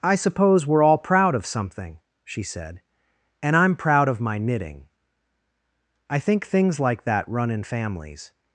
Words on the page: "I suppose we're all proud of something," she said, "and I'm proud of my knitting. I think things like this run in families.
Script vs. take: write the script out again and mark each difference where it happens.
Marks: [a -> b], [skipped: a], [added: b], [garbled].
"I suppose we're all proud of something," she said, "and I'm proud of my knitting. I think things like [this -> that] run in families.